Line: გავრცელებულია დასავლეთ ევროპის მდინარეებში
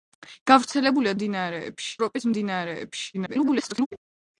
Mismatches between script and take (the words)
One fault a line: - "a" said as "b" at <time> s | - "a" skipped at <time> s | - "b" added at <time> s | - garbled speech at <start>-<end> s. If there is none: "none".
- "დასავლეთ" said as "მდინარეებში" at 1.2 s
- garbled speech at 3.1-3.9 s